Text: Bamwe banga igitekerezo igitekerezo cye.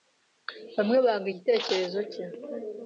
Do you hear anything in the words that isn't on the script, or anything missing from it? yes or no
yes